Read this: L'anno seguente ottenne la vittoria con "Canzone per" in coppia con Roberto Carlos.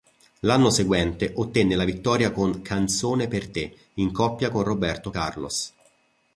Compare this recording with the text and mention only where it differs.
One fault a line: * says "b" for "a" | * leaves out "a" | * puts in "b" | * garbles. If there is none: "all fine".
* puts in "te"